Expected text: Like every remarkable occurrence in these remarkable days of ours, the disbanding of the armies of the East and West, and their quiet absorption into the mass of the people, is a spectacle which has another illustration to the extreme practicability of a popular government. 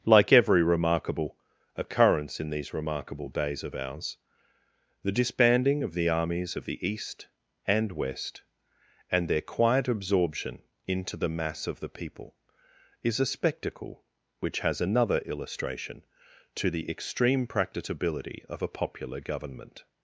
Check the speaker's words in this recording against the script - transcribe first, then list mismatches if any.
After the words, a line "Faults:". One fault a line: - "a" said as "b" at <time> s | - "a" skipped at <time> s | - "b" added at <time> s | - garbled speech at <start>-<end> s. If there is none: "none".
Like every remarkable occurrence in these remarkable days of ours, the disbanding of the armies of the East and West, and their quiet absorption into the mass of the people, is a spectacle which has another illustration to the extreme practicability of a popular government.
Faults:
none